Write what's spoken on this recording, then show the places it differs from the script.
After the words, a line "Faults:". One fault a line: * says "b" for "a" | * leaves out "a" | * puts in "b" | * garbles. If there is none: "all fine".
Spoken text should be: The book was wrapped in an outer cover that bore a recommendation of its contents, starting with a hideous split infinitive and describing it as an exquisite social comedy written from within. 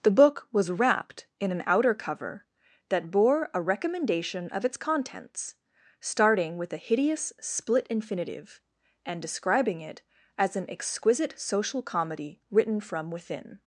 The book was wrapped in an outer cover that bore a recommendation of its contents, starting with a hideous split infinitive and describing it as an exquisite social comedy written from within.
Faults:
all fine